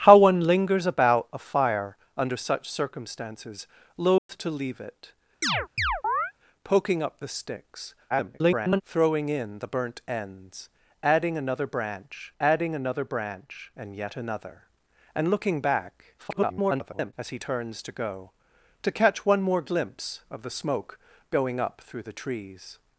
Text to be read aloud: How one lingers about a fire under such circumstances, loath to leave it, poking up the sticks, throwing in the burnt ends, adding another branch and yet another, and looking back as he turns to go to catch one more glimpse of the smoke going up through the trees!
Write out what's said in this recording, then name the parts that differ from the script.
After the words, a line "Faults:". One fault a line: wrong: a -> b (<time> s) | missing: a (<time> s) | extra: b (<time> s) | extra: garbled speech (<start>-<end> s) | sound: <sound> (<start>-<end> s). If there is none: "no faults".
How one lingers about a fire under such circumstances, loath to leave it, poking up the sticks, [garbled] throwing in the burnt ends, adding another branch adding another branch and yet another, and looking back [garbled] as he turns to go to catch one more glimpse of the smoke going up through the trees!
Faults:
sound: dropout (4.2-4.3 s)
sound: chirp (5.4-6.3 s)
extra: garbled speech (8.1-8.8 s)
extra: adding another branch (12.4 s)
extra: garbled speech (16.2-17.1 s)